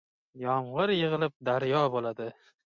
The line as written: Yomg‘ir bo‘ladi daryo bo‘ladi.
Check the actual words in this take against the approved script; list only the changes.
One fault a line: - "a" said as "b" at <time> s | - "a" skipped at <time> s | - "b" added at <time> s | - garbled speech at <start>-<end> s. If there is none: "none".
- "bo‘ladi" said as "yig‘ilib" at 0.9 s